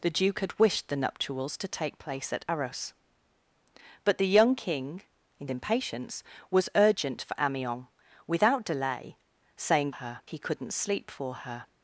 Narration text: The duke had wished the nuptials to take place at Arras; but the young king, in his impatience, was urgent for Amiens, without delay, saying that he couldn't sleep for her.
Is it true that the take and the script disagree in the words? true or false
true